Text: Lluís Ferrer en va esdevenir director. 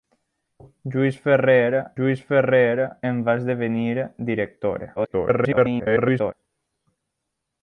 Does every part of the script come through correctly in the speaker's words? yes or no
no